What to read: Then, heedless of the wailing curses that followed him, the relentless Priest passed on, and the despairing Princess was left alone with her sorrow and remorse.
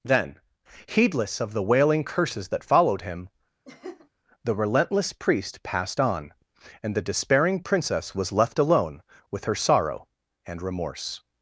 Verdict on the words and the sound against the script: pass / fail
fail